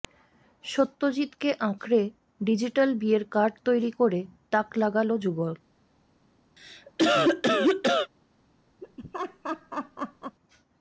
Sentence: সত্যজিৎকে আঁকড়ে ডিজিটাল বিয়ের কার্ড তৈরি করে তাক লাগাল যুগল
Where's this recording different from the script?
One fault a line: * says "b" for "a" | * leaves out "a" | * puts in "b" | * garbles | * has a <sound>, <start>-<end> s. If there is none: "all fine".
* has a cough, 6.6-8.1 s
* has a laugh, 8.8-10.4 s